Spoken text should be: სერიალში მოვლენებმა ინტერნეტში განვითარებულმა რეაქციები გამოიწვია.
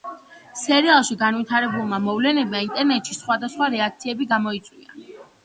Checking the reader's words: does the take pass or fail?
fail